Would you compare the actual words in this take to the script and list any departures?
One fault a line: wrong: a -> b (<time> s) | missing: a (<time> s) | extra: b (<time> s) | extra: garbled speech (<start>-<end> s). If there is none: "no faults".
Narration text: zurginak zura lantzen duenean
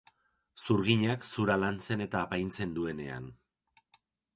extra: eta apaintzen (2.1 s)